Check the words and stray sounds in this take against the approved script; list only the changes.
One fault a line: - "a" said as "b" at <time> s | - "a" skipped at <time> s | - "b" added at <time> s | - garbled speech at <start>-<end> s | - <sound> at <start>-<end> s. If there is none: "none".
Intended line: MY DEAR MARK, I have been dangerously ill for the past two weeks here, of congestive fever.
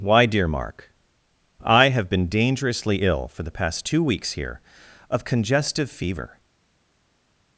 - "MY" said as "Why" at 0.0 s